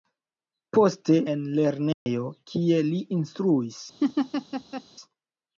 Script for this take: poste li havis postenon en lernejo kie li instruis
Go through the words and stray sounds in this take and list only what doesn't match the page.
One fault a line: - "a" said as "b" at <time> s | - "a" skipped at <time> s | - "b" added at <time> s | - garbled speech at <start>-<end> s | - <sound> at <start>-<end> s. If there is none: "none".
- "li havis postenon" skipped at 1.2 s
- dropout at 1.9-2.1 s
- laugh at 4.0-4.8 s